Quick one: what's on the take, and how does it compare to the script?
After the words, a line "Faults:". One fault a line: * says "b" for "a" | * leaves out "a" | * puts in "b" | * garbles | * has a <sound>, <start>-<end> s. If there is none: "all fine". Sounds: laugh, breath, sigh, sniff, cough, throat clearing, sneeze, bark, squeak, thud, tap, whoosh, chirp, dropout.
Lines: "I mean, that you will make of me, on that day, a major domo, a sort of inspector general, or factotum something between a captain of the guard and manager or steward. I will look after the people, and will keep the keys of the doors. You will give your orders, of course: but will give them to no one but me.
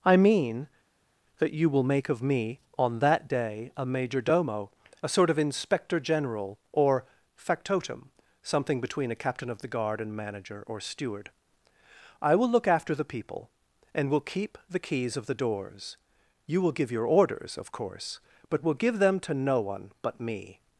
"I mean, that you will make of me, on that day, a major domo, a sort of inspector general, or factotum something between a captain of the guard and manager or steward. I will look after the people, and will keep the keys of the doors. You will give your orders, of course: but will give them to no one but me.
Faults:
all fine